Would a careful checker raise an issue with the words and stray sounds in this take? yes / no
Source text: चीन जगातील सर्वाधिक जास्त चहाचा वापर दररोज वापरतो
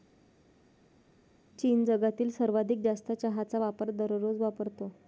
no